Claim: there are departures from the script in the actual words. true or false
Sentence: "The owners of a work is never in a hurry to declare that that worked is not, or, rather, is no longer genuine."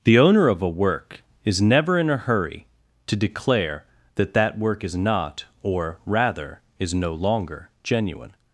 true